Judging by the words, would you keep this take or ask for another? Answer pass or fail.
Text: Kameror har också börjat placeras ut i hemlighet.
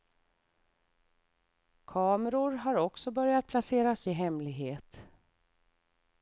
fail